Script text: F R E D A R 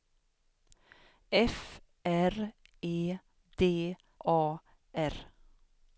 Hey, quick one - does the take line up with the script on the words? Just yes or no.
yes